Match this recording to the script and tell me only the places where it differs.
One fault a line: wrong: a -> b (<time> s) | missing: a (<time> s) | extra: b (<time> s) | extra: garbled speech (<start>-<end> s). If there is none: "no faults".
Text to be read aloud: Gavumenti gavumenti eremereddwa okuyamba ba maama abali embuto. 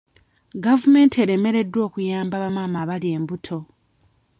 missing: gavumenti (1.1 s)